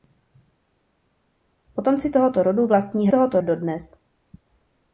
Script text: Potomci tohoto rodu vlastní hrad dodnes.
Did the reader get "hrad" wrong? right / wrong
wrong